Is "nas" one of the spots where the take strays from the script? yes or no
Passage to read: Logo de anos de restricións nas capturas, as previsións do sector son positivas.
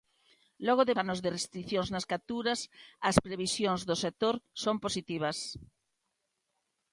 no